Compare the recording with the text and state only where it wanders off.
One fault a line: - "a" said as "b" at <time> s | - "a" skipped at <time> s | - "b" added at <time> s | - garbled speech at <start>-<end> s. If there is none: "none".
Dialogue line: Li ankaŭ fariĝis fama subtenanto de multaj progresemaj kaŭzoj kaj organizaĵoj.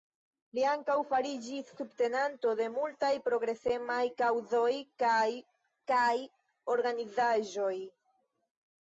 - "fama" skipped at 1.7 s
- "kaj" added at 5.9 s